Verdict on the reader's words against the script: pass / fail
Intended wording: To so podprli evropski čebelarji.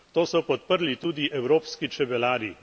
fail